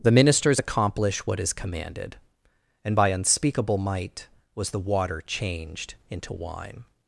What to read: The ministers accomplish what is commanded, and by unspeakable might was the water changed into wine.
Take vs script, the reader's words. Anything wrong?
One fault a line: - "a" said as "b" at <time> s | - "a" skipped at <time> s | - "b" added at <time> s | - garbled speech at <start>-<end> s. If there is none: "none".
none